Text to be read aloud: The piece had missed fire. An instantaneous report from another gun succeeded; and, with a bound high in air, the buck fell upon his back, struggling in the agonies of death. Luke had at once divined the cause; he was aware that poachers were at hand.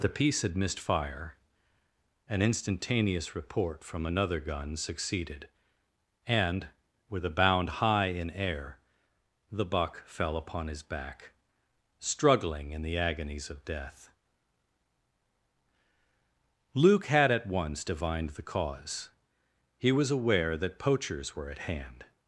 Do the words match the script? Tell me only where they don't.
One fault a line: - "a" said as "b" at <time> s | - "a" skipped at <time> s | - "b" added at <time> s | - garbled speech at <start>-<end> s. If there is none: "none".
none